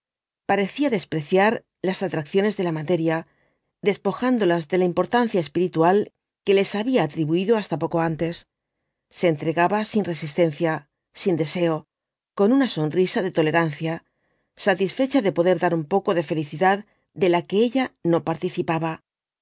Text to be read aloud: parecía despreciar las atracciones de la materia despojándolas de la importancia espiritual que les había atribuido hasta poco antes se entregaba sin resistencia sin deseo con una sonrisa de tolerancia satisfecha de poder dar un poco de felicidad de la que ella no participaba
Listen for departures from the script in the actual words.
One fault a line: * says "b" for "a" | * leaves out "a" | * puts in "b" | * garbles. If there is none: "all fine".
all fine